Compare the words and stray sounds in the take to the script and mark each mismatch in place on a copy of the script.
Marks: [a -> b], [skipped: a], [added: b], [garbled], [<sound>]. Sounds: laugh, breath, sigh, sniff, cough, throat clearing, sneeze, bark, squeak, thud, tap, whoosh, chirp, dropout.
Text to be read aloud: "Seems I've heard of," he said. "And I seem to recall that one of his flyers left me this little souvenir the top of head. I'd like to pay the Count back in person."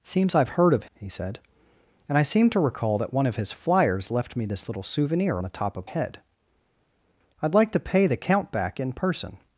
"Seems I've heard of," he said. "And I seem to recall that one of his flyers left me this little souvenir the top of head. I'd like to pay the Count back in person."